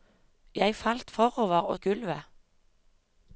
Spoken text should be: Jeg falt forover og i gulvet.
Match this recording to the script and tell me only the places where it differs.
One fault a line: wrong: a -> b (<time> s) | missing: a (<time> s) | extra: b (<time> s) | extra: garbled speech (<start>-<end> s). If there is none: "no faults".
no faults